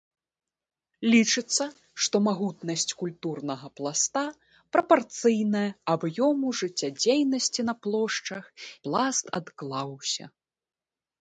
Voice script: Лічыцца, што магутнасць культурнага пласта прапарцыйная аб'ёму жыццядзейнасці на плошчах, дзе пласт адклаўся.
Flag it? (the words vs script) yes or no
yes